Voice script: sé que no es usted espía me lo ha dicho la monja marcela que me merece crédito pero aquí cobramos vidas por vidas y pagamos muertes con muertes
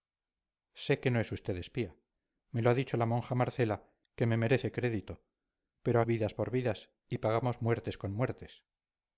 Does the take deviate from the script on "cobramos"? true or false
true